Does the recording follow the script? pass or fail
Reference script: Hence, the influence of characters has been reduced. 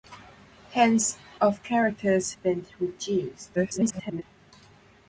fail